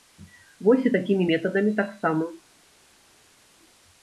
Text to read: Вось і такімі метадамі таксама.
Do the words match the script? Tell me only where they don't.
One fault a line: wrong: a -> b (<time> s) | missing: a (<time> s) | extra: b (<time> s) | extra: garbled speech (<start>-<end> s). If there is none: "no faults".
no faults